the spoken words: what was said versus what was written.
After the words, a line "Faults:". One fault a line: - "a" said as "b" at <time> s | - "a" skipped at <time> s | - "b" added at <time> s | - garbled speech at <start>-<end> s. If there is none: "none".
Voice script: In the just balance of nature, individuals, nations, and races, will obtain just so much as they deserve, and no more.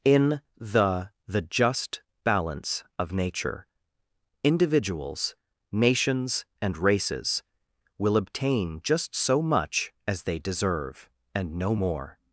In the the just balance of nature, individuals, nations, and races, will obtain just so much as they deserve, and no more.
Faults:
- "the" added at 1.3 s